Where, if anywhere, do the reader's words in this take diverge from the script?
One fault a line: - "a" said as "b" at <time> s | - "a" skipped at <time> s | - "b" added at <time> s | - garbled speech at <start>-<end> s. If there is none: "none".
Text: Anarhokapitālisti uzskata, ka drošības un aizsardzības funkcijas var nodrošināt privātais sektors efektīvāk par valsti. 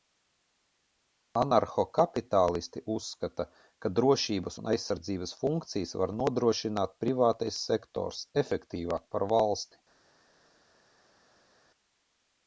none